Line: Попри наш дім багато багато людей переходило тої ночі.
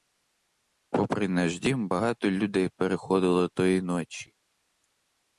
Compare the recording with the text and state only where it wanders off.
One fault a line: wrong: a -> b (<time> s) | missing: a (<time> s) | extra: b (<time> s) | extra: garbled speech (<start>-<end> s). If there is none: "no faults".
missing: багато (2.3 s)